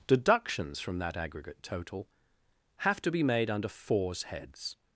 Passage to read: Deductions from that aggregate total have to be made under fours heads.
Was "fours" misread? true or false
false